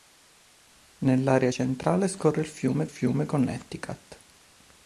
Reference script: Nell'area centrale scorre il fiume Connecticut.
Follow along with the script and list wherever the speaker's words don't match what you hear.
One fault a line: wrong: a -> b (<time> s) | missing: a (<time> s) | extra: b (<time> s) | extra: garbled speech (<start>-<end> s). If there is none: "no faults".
extra: fiume (2.8 s)